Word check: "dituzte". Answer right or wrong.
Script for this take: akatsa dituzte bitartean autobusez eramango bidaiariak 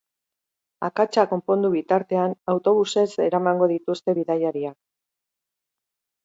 wrong